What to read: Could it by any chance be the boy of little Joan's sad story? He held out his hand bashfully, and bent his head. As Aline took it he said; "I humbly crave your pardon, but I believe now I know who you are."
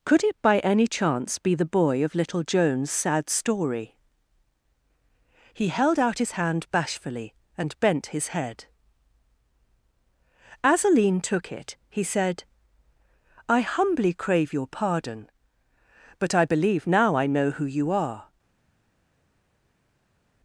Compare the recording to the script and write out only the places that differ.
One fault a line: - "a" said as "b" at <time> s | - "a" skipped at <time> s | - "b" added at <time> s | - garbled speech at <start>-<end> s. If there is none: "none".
none